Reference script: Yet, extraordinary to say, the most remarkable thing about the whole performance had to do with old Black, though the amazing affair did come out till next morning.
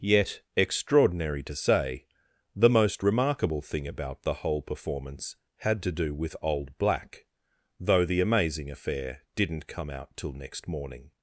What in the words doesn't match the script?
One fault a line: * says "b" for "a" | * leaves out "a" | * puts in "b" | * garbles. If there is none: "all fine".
* says "didn't" for "did"